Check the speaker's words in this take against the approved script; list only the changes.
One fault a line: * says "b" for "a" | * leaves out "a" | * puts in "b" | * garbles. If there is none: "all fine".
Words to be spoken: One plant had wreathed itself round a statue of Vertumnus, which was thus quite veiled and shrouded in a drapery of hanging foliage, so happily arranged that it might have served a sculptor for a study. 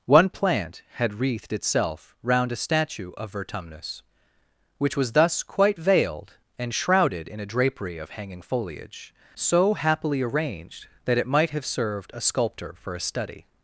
all fine